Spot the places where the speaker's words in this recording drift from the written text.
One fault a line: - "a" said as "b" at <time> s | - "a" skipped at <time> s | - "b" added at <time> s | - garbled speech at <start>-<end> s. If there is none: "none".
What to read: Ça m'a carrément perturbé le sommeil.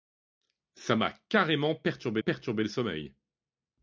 - "perturbé" added at 2.2 s